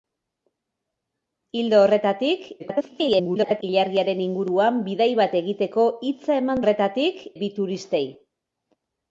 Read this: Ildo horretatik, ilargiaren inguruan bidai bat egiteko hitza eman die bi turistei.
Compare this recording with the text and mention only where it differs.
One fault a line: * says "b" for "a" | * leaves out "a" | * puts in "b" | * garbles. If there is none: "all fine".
* garbles
* says "horretatik" for "die"